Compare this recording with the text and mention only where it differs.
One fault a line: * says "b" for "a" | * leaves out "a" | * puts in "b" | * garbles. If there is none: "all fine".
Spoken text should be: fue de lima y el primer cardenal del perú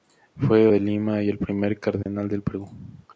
all fine